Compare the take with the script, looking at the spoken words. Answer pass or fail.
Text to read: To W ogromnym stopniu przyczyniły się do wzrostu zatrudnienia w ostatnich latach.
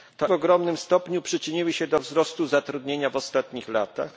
pass